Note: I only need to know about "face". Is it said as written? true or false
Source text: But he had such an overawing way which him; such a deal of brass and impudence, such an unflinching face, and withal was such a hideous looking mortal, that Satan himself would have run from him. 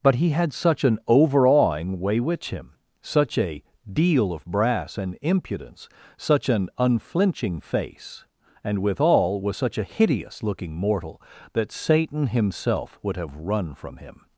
true